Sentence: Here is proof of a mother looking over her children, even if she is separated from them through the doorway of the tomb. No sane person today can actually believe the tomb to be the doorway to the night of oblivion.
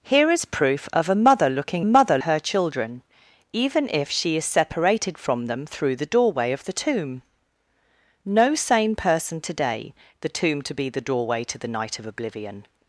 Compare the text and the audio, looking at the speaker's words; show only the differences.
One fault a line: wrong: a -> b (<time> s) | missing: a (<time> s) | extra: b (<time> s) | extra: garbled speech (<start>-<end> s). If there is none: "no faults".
wrong: over -> mother (1.8 s)
missing: can actually believe (9.9 s)